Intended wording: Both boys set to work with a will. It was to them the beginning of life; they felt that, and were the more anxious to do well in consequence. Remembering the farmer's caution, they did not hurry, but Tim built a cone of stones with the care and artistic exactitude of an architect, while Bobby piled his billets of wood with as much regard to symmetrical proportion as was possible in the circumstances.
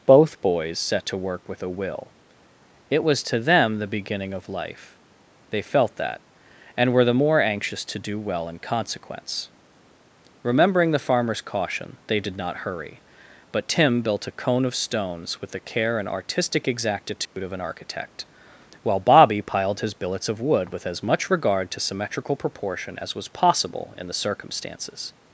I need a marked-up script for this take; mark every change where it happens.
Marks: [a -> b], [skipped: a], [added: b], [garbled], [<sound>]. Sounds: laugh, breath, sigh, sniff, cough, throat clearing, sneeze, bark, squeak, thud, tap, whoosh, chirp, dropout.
Both boys set to work with a will. It was to them the beginning of life; they felt that, and were the more anxious to do well in consequence. Remembering the farmer's caution, they did not hurry, but Tim built a cone of stones with the care and artistic exactitude [dropout] of an architect, while Bobby piled his billets of wood with as much regard to symmetrical proportion as was possible in the circumstances.